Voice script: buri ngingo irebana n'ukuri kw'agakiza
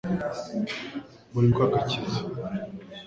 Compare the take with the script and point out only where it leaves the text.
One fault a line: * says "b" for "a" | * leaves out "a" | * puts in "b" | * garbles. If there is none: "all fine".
* leaves out "ngingo irebana n'ukuri"